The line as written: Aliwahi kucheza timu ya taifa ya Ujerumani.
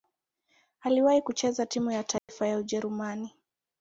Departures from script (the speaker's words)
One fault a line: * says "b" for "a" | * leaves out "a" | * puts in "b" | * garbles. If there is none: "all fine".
all fine